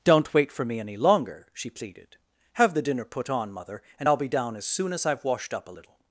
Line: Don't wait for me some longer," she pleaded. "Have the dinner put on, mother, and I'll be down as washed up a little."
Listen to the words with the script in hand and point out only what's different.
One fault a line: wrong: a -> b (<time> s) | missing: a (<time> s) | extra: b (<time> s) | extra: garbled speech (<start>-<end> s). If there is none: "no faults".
wrong: some -> any (0.8 s)
extra: soon as I've (4.6 s)